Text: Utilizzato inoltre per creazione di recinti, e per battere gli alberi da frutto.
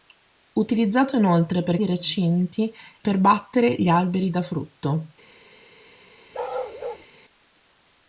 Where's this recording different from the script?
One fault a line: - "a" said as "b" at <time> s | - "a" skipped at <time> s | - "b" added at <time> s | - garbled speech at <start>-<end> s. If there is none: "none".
- "creazione" skipped at 1.8 s
- "e" skipped at 2.7 s